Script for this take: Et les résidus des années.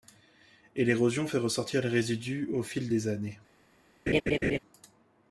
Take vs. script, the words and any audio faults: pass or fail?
fail